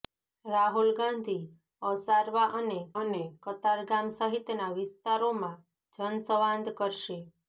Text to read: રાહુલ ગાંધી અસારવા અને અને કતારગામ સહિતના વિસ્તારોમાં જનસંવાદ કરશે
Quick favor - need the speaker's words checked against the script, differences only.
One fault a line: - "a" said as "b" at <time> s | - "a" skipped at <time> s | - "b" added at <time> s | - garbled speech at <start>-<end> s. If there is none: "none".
none